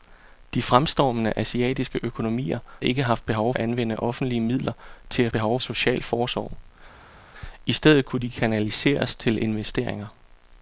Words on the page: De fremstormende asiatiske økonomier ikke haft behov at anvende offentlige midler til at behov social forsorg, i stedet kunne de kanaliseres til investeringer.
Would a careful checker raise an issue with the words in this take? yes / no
no